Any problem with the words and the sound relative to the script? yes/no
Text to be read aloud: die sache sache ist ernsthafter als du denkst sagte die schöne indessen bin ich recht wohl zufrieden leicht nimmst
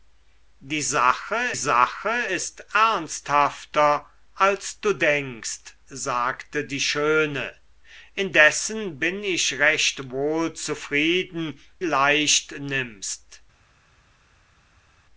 no